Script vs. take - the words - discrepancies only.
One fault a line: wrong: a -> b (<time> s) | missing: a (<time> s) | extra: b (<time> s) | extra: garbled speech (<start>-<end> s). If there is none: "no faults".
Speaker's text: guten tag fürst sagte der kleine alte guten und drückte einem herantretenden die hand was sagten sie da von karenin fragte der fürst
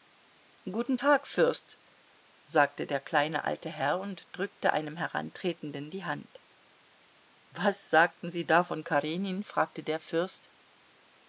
wrong: guten -> herr (3.7 s)